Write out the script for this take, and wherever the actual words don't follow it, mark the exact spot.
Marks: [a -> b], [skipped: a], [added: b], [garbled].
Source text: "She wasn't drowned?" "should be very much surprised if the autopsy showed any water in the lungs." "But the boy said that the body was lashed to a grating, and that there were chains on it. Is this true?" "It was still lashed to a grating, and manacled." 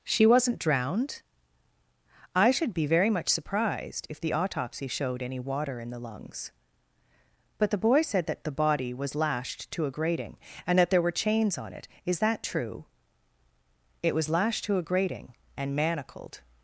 "She wasn't drowned?" [added: I] "should be very much surprised if the autopsy showed any water in the lungs." "But the boy said that the body was lashed to a grating, and that there were chains on it. Is [this -> that] true?" "It was [skipped: still] lashed to a grating, and manacled."